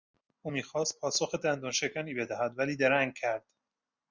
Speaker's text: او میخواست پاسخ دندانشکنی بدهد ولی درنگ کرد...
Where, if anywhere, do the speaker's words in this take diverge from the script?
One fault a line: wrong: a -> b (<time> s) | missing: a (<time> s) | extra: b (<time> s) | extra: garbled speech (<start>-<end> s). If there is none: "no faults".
no faults